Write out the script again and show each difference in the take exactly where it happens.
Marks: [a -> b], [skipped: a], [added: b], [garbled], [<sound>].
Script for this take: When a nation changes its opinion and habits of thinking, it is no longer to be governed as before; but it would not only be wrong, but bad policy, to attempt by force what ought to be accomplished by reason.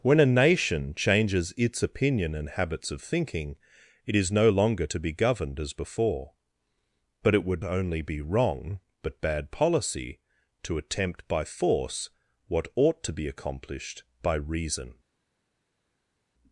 When a nation changes its opinion and habits of thinking, it is no longer to be governed as before; but it would [skipped: not] only be wrong, but bad policy, to attempt by force what ought to be accomplished by reason.